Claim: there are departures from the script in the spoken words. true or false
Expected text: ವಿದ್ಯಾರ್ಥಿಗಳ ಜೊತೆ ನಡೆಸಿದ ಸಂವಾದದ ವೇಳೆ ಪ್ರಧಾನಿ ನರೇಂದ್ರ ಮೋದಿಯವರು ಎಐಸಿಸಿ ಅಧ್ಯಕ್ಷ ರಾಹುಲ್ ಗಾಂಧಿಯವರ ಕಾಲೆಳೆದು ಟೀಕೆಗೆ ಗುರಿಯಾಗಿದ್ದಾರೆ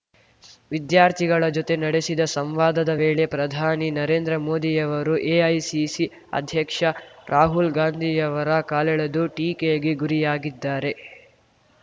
false